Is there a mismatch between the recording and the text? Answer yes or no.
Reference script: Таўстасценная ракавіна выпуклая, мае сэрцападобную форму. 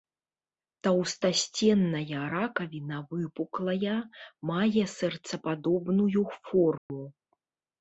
no